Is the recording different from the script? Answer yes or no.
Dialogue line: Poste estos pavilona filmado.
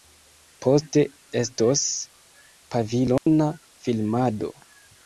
no